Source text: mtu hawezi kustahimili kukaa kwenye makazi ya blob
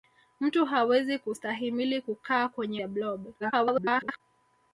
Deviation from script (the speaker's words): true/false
true